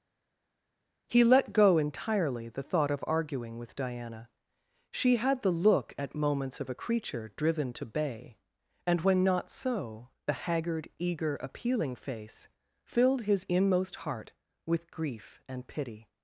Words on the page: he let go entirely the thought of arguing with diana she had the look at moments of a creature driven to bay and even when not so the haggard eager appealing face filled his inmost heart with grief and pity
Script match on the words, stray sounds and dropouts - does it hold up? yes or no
no